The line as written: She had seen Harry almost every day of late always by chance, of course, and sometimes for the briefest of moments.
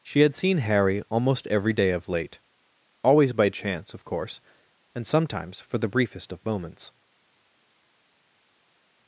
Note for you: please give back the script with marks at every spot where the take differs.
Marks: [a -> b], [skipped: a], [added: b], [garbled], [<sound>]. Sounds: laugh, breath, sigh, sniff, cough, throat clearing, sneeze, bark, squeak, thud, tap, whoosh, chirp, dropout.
She had seen Harry almost every day of late always by chance, of course, and sometimes for the briefest of moments.